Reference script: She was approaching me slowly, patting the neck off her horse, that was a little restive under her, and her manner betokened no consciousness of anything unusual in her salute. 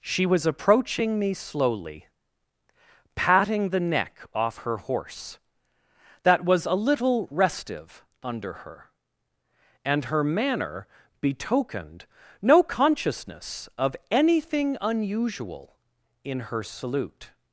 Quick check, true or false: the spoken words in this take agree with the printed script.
true